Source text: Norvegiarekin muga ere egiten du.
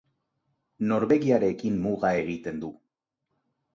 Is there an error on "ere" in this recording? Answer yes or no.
yes